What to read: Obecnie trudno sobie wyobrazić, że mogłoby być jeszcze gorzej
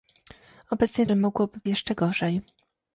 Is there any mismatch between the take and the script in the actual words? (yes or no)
yes